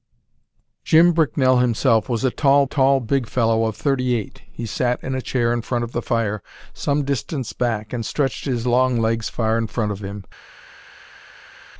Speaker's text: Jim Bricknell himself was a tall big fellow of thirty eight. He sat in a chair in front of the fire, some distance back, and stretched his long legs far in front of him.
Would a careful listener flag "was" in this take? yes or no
no